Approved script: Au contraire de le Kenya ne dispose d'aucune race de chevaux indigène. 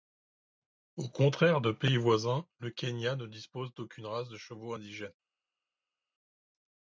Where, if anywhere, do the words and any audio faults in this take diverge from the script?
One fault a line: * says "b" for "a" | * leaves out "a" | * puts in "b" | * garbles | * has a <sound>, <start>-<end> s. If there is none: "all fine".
* puts in "pays voisins"